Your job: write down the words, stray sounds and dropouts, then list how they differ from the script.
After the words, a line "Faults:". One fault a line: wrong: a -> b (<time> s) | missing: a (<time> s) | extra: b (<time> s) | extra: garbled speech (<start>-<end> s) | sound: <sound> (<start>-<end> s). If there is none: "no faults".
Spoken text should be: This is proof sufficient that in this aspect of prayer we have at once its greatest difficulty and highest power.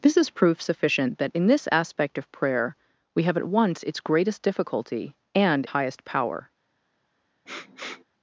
This is proof sufficient that in this aspect of prayer we have at once its greatest difficulty and highest power.
Faults:
sound: sniff (7.5-8.0 s)